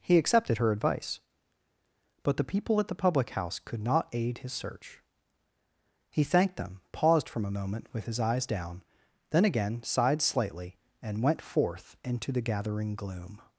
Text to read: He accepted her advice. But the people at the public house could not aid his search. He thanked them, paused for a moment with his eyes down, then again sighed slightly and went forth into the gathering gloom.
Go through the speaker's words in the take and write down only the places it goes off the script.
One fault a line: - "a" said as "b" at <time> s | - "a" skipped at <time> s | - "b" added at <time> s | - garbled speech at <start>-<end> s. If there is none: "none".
- "for" said as "from" at 7.3 s